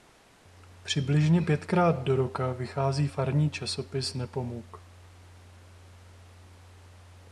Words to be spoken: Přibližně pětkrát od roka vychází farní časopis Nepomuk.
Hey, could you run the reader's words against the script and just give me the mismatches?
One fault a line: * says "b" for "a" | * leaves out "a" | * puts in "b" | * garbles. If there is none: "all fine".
* says "do" for "od"